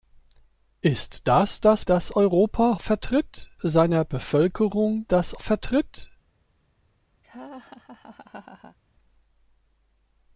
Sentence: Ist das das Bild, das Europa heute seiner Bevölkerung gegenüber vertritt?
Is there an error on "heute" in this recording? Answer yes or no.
yes